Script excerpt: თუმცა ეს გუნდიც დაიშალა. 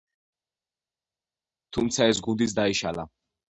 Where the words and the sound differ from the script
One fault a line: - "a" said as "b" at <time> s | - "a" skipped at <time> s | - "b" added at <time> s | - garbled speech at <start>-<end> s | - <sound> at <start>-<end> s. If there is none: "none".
none